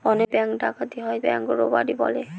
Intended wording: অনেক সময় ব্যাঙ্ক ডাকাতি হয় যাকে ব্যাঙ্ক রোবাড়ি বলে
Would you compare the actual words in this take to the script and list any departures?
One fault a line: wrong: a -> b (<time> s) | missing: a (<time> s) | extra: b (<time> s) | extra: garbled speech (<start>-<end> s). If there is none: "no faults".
missing: সময় (0.3 s)
missing: যাকে (1.2 s)